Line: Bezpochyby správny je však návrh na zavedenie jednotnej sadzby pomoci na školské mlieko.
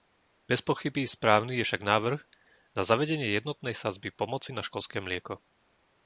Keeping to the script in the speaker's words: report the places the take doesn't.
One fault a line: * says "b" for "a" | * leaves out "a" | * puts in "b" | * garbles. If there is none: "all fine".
all fine